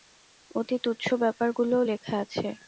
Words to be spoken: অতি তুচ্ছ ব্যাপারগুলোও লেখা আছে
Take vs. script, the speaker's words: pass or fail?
pass